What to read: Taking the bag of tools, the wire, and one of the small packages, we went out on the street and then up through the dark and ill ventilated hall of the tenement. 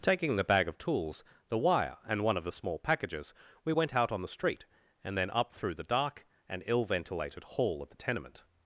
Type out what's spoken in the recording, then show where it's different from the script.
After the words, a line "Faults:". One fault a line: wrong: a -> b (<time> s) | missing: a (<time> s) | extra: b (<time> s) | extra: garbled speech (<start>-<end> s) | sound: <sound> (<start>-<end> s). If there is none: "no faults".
Taking the bag of tools, the wire, and one of the small packages, we went out on the street and then up through the dark and ill ventilated hall of the tenement.
Faults:
no faults